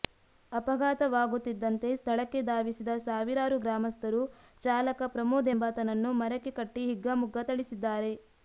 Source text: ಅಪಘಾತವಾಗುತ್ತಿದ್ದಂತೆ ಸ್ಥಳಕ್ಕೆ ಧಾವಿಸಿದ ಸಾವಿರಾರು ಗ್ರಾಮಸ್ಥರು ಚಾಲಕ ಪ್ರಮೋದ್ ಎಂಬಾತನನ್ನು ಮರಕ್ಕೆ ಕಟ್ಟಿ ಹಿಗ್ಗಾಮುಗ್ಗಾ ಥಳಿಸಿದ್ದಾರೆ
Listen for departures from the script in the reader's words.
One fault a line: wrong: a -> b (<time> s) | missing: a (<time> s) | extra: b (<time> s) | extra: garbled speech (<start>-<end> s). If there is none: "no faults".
no faults